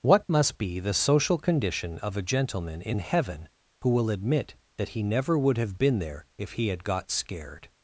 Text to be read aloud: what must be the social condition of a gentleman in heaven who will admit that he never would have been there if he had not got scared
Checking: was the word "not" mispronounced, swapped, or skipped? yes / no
yes